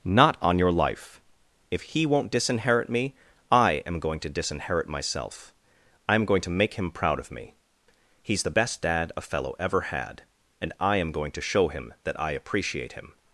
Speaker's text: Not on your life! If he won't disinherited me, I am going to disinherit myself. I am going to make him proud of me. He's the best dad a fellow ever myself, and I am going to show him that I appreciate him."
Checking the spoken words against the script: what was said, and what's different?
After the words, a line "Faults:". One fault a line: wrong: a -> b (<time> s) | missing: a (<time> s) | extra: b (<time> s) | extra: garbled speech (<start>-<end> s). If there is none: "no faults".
Not on your life! If he won't disinherit me, I am going to disinherit myself. I am going to make him proud of me. He's the best dad a fellow ever had, and I am going to show him that I appreciate him."
Faults:
wrong: disinherited -> disinherit (2.3 s)
wrong: myself -> had (9.8 s)